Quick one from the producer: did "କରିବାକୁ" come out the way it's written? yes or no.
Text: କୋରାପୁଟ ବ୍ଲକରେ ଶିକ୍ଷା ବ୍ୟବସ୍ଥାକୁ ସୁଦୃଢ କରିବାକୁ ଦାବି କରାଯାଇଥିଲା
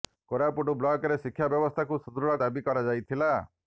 no